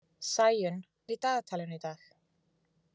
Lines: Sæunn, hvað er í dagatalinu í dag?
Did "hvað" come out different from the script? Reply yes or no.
yes